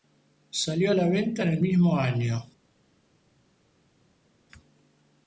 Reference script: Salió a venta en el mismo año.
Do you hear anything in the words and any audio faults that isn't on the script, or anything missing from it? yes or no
yes